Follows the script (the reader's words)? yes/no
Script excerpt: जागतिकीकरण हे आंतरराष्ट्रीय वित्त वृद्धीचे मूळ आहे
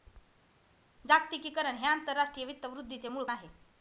yes